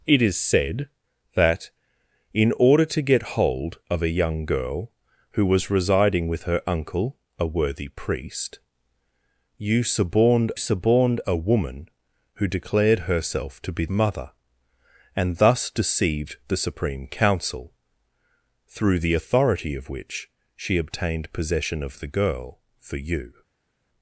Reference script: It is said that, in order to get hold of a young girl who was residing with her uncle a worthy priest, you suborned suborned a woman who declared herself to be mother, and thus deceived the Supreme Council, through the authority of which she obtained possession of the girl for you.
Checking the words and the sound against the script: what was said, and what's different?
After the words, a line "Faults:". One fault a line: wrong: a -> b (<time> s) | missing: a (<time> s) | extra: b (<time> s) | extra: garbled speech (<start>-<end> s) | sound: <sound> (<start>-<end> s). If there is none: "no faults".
It is said that, in order to get hold of a young girl who was residing with her uncle a worthy priest, you suborned suborned a woman who declared herself to be mother, and thus deceived the Supreme Council, through the authority of which she obtained possession of the girl for you.
Faults:
no faults